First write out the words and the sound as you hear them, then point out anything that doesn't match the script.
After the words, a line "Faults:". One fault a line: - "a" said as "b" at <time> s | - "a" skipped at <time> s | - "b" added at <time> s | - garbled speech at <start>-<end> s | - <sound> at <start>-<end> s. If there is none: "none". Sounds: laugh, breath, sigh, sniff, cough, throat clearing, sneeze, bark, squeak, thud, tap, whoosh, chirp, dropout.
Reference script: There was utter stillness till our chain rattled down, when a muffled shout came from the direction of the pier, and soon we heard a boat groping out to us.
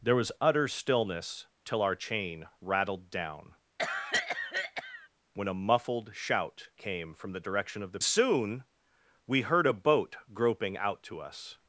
There was utter stillness till our chain rattled down, when a muffled shout came from the direction of the soon we heard a boat groping out to us.
Faults:
- cough at 3.8-5.1 s
- "pier and" skipped at 8.0 s